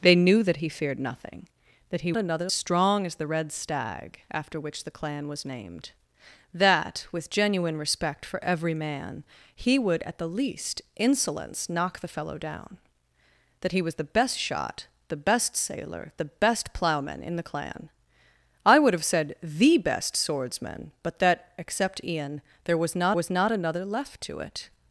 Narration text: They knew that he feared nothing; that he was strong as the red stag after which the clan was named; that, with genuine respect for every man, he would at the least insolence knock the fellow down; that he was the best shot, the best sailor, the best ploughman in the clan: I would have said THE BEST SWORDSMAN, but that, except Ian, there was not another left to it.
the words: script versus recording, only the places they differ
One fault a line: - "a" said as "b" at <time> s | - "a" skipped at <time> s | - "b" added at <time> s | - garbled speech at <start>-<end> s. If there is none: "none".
- "was" said as "another" at 2.2 s
- "was not" added at 23.1 s